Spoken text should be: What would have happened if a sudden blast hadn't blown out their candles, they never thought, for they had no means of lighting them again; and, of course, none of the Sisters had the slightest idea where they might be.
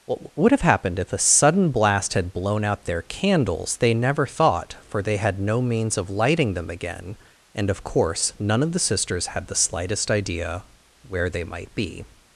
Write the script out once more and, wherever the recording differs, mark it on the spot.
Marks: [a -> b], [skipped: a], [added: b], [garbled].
What would have happened if a sudden blast [hadn't -> had] blown out their candles, they never thought, for they had no means of lighting them again; and, of course, none of the Sisters had the slightest idea where they might be.